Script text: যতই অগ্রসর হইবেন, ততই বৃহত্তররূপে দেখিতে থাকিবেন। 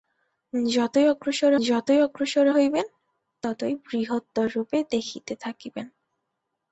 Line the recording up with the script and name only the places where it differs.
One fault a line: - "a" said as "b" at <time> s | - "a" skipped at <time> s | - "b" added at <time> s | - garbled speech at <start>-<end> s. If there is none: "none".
- "যতই অগ্রসর" added at 1.6 s